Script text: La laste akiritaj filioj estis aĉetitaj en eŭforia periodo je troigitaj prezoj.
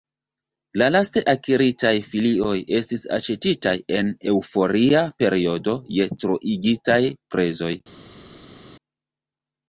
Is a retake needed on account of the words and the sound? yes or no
no